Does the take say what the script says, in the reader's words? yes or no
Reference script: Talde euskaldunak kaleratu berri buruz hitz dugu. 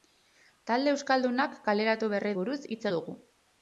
yes